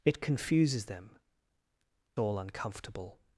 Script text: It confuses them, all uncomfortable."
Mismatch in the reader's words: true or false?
false